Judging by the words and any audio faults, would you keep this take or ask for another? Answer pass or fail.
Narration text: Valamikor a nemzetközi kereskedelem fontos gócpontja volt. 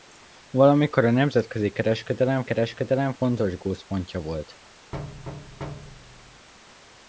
fail